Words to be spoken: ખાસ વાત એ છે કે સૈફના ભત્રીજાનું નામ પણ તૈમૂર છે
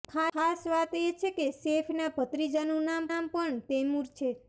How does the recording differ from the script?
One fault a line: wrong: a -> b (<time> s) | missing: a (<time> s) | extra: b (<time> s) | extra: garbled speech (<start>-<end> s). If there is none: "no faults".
extra: નામ (3.1 s)